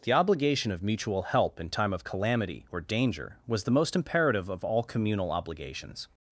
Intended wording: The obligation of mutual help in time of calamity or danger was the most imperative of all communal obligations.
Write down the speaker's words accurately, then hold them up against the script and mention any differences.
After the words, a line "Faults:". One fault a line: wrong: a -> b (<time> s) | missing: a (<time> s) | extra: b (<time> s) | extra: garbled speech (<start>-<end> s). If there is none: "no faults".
The obligation of mutual help in time of calamity or danger was the most imperative of all communal obligations.
Faults:
no faults